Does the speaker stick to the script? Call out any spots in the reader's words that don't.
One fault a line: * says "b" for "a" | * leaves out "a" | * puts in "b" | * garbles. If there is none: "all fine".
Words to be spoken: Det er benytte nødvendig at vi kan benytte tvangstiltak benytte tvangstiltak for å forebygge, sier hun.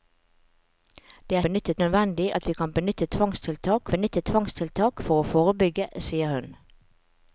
all fine